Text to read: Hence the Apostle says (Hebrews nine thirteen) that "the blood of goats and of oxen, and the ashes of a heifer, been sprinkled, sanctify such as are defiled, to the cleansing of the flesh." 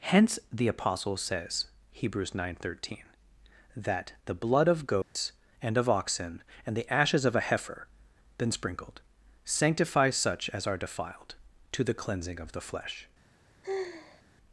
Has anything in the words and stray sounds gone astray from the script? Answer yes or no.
yes